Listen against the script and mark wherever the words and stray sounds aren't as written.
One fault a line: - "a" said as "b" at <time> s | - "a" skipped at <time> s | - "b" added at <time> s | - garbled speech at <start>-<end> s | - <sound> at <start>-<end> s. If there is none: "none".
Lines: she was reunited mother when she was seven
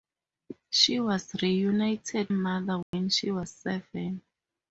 - dropout at 2.8-2.9 s